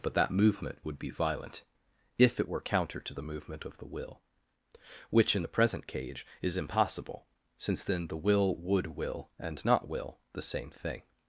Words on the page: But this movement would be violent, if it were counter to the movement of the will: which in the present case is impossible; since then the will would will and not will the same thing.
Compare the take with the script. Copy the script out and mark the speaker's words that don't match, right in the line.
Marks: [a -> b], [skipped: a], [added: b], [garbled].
But [this -> that] movement would be violent, if it were counter to the movement of the will: which in the present [case -> cage] is impossible; since then the will would will and not will the same thing.